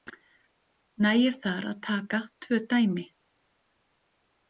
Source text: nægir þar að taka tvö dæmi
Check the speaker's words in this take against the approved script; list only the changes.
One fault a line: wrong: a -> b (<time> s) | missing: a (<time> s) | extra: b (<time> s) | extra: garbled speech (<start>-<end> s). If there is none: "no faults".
no faults